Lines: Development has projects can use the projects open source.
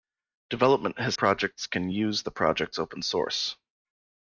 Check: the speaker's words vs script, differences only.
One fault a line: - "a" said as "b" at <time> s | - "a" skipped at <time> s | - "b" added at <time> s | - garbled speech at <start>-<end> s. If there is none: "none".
none